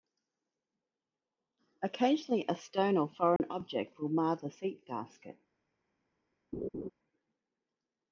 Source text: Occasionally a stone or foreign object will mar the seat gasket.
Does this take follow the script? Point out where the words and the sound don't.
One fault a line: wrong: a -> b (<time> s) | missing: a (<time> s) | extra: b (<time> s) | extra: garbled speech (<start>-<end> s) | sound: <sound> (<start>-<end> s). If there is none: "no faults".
sound: dropout (3.4-3.4 s)
sound: laugh (6.5-6.9 s)